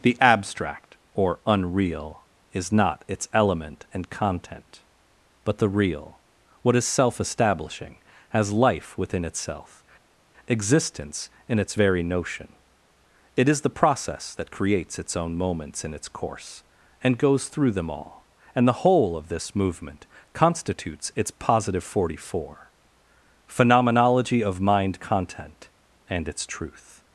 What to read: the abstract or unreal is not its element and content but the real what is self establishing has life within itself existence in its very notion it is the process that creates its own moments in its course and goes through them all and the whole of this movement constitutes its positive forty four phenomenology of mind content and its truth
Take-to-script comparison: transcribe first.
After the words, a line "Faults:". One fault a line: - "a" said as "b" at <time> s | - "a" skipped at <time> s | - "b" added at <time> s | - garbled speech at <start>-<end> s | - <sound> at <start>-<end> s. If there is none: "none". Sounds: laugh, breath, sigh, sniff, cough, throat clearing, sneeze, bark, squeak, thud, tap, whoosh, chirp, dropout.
the abstract or unreal is not its element and content but the real what is self establishing has life within itself existence in its very notion it is the process that creates its own moments in its course and goes through them all and the whole of this movement constitutes its positive forty four phenomenology of mind content and its truth
Faults:
none